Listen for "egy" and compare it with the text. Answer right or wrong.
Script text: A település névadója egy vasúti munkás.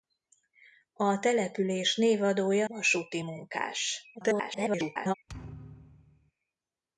wrong